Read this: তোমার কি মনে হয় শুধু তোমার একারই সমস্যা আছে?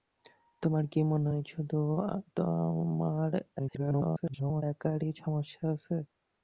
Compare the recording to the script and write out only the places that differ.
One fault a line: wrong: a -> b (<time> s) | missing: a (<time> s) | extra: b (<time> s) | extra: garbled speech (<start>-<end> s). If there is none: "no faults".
extra: garbled speech (3.6-4.6 s)